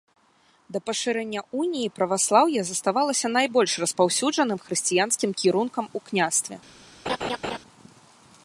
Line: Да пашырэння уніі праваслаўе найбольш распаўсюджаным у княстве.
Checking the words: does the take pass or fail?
fail